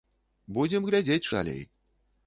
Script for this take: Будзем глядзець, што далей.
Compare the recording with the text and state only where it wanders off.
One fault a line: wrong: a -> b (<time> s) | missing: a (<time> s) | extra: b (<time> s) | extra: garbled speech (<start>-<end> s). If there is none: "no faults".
missing: што (1.3 s)